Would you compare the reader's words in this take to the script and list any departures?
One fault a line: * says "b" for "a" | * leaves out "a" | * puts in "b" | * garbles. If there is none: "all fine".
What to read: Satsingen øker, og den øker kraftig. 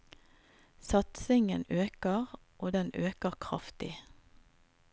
all fine